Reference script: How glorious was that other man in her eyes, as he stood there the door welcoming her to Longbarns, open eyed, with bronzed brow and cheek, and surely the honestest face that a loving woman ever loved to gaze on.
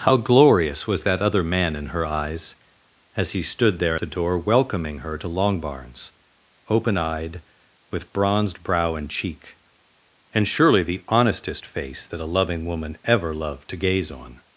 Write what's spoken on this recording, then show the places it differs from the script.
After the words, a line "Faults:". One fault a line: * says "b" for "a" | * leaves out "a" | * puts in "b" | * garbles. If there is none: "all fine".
How glorious was that other man in her eyes, as he stood there the door welcoming her to Longbarns, open eyed, with bronzed brow and cheek, and surely the honestest face that a loving woman ever loved to gaze on.
Faults:
all fine